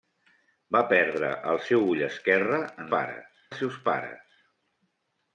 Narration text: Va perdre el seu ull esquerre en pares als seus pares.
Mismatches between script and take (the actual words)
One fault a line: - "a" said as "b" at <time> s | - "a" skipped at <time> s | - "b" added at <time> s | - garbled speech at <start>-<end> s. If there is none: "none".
none